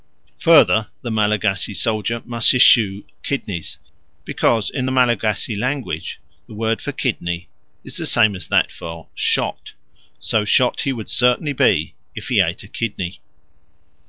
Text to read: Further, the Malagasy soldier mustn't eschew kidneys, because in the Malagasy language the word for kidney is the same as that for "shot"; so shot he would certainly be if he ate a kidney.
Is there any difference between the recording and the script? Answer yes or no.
yes